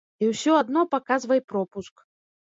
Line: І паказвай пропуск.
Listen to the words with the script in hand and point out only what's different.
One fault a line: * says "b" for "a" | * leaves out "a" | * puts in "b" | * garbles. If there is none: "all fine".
* puts in "ўсё адно"